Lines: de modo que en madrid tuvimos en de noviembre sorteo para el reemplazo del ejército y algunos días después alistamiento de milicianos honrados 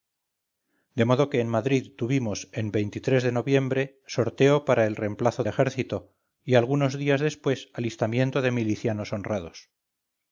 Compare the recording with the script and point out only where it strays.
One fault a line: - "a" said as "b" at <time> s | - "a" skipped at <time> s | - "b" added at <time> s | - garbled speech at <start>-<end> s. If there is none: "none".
- "del" skipped at 5.4 s